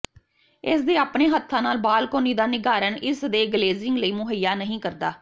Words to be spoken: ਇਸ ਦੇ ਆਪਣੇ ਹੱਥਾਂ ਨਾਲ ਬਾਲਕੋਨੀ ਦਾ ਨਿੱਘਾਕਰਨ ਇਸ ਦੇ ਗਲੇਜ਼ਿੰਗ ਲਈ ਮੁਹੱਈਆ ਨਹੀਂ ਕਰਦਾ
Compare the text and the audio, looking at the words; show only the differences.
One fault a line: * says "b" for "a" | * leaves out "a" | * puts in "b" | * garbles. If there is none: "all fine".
all fine